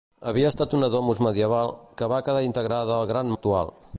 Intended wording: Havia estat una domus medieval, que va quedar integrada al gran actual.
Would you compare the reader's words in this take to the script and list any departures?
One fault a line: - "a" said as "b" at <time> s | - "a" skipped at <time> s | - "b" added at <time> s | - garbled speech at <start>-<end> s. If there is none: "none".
none